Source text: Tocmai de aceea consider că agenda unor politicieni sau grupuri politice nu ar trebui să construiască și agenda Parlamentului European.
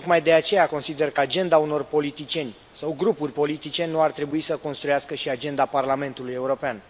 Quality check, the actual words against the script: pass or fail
pass